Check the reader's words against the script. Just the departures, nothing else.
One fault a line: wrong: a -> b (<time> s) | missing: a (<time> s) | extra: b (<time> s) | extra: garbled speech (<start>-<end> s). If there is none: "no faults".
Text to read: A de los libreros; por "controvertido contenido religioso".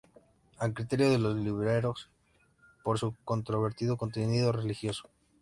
extra: criterio (0.7 s)
extra: su (3.0 s)